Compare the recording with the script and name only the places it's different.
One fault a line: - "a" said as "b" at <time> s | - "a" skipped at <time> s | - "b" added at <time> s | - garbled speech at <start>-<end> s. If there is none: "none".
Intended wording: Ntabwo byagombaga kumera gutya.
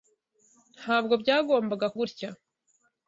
- "kumera" skipped at 1.9 s